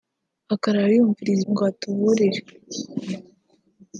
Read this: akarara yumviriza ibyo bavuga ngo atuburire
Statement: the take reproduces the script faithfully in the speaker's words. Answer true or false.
false